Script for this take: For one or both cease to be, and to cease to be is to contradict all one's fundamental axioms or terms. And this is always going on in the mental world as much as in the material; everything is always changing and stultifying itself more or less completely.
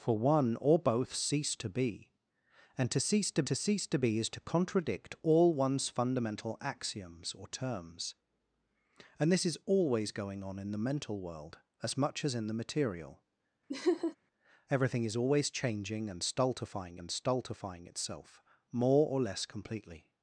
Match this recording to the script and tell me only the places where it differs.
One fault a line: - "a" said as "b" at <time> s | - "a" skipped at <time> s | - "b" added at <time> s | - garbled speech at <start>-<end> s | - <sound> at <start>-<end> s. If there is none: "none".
- "to cease to" added at 3.4 s
- laugh at 13.7-14.2 s
- "and stultifying" added at 17.0 s